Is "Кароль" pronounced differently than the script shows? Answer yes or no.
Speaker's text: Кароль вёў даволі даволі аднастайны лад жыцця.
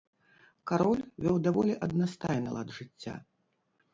no